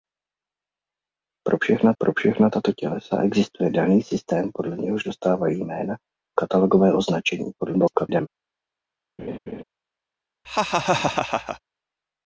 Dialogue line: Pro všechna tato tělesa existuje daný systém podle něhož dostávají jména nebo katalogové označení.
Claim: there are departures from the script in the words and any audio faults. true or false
true